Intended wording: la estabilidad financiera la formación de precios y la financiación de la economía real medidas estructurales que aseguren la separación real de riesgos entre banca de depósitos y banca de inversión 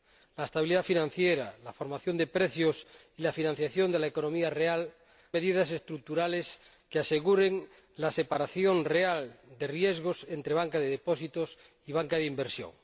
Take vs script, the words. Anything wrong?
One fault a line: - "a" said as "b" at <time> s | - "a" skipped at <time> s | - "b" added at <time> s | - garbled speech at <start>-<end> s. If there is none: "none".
none